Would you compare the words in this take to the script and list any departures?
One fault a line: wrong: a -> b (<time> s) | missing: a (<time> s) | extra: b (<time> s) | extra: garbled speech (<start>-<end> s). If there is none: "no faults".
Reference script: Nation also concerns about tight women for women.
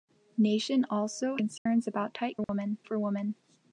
no faults